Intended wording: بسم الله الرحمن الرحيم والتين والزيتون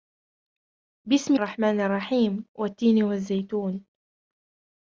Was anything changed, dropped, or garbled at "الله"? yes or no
yes